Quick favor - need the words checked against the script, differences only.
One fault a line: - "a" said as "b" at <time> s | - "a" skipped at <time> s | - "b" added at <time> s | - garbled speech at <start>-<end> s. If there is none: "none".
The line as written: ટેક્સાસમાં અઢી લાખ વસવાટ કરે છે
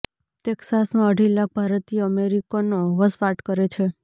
- "ભારતીય અમેરિકનો" added at 1.5 s